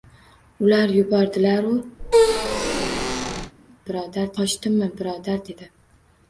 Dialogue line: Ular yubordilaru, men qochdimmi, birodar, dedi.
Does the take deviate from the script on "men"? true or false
true